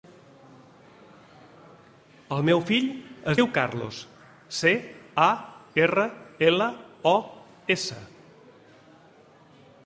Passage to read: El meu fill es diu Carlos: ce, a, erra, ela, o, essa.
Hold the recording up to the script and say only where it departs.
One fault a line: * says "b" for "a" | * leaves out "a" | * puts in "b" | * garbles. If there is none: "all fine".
all fine